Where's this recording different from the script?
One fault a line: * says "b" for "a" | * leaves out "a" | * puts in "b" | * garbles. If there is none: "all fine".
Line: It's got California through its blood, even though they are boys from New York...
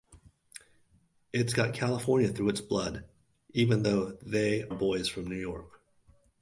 * leaves out "are"